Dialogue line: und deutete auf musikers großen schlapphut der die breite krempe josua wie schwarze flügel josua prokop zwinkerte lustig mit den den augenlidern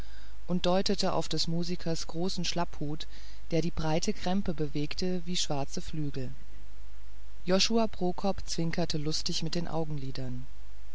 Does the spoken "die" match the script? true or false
true